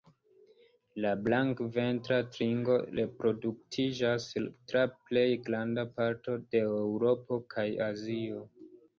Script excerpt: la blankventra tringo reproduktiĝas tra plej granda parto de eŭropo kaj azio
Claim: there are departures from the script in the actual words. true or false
false